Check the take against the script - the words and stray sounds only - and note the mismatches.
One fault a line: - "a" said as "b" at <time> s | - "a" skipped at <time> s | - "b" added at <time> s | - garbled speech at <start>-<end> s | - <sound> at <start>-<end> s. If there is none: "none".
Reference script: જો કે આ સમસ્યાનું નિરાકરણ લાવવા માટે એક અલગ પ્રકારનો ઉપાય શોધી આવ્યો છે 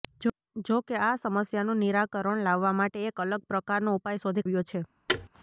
- thud at 5.1-5.3 s